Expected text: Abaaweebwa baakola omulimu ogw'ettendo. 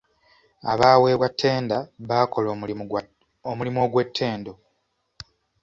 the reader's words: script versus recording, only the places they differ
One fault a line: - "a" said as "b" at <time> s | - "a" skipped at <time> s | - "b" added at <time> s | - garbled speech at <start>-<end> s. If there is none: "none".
- "ttenda" added at 1.3 s